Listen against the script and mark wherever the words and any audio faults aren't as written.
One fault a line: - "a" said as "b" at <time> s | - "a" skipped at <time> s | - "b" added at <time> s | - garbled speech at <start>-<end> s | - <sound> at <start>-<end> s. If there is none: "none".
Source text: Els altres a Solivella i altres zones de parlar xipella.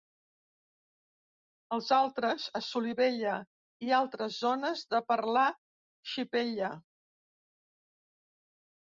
none